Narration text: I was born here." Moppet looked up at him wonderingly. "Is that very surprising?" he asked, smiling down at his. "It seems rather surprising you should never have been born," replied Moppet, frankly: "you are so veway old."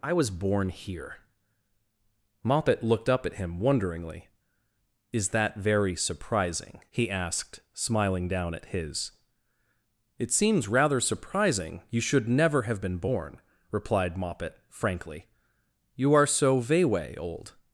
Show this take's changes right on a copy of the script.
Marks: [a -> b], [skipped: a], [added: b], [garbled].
I was born here." Moppet looked up at him wonderingly. "Is that very surprising?" he asked, smiling down at his. "It seems rather surprising you should never have been born," replied Moppet, frankly: "you are so veway old."